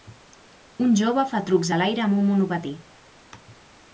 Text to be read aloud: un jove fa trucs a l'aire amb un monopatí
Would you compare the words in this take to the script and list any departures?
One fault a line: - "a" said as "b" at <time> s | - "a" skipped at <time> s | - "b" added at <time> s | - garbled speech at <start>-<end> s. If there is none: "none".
none